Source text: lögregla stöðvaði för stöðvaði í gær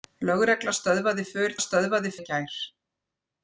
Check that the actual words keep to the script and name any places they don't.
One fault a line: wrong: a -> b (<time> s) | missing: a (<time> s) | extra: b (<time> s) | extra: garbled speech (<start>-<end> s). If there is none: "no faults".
no faults